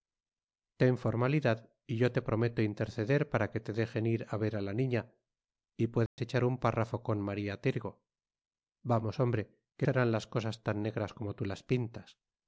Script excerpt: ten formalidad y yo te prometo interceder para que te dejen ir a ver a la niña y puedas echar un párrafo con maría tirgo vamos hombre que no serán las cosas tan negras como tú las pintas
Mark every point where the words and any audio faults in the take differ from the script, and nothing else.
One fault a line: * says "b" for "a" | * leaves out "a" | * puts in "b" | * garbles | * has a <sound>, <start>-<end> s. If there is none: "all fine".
* has a dropout, 6.1-6.2 s
* leaves out "no"